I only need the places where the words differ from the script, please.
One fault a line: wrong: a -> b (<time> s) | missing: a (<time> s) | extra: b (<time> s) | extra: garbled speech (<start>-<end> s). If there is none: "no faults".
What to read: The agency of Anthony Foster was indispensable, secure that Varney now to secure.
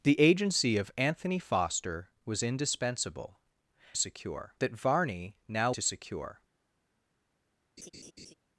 no faults